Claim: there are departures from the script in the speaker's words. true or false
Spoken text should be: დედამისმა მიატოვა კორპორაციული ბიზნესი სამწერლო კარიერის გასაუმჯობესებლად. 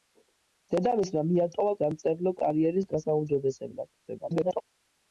true